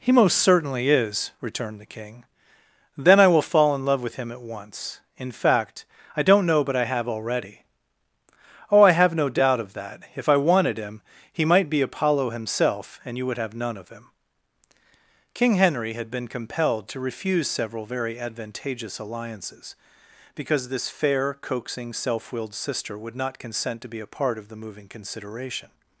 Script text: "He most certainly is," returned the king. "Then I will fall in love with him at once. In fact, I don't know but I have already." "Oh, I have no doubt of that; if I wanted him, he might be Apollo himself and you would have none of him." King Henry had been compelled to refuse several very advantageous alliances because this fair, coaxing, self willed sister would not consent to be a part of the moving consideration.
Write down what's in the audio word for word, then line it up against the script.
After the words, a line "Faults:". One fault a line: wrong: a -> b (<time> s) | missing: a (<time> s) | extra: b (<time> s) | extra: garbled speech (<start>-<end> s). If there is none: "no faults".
"He most certainly is," returned the king. "Then I will fall in love with him at once. In fact, I don't know but I have already." "Oh, I have no doubt of that; if I wanted him, he might be Apollo himself and you would have none of him." King Henry had been compelled to refuse several very advantageous alliances because this fair, coaxing, self willed sister would not consent to be a part of the moving consideration.
Faults:
no faults